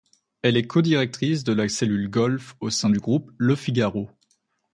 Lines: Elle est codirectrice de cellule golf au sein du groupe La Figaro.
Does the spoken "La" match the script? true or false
false